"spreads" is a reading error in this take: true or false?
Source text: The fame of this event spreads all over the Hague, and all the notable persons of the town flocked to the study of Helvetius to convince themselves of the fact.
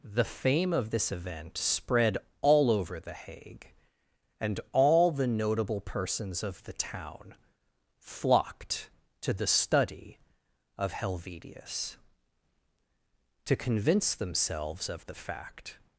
true